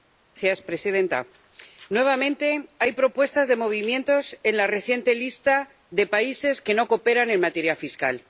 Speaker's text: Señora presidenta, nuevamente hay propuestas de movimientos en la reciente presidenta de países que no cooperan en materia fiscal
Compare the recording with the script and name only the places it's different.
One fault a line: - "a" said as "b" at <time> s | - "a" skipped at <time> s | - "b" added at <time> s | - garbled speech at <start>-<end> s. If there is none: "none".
- "presidenta" said as "lista" at 5.2 s